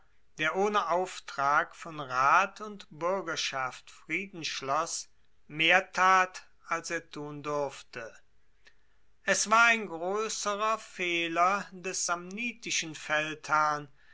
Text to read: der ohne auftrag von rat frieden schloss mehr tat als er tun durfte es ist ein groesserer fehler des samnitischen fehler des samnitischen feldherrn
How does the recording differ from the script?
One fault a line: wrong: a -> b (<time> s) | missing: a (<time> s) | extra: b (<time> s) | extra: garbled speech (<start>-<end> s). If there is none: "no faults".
extra: und buergerschaft (2.6 s)
wrong: ist -> war (9.5 s)
missing: fehler des samnitischen (12.9 s)